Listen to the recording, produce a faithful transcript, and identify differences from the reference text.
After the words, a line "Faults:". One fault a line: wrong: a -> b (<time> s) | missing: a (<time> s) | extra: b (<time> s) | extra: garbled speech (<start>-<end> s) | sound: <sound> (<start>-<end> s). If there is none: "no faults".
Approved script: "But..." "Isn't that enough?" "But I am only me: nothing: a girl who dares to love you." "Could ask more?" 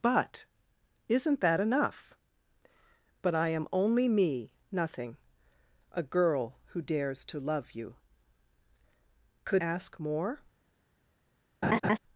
"But..." "Isn't that enough?" "But I am only me: nothing: a girl who dares to love you." "Could ask more?"
Faults:
sound: laugh (11.6-12.0 s)